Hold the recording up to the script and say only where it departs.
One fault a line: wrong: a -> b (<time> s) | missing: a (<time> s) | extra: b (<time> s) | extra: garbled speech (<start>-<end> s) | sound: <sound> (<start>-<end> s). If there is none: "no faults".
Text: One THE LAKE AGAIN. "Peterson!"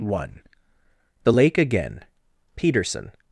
no faults